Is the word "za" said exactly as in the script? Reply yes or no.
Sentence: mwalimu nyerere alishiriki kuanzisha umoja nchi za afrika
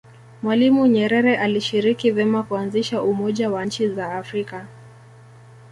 yes